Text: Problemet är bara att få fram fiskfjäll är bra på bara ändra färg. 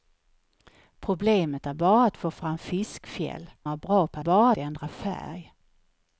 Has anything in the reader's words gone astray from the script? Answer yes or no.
no